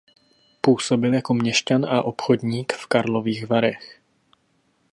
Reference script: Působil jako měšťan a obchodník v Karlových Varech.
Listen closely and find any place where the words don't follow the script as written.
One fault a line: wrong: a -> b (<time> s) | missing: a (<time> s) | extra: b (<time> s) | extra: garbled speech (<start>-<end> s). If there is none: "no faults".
no faults